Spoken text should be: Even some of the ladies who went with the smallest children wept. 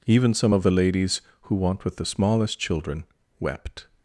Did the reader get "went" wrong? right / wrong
wrong